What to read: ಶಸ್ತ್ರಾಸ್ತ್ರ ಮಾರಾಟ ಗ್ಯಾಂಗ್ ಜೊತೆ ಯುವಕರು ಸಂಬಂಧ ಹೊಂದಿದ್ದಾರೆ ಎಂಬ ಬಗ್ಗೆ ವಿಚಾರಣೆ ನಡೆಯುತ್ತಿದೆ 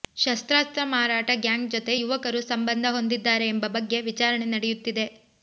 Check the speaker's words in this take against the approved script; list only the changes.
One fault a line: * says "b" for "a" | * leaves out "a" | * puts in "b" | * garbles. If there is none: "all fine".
all fine